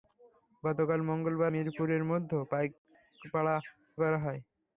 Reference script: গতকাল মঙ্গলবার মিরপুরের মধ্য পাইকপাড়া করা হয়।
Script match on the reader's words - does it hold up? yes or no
yes